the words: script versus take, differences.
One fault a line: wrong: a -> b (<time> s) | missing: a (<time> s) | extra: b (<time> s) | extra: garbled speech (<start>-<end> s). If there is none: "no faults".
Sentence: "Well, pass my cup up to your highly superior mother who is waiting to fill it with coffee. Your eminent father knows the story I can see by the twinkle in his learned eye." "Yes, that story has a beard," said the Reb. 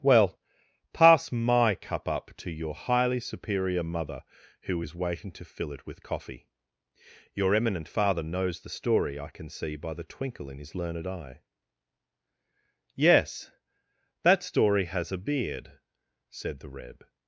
no faults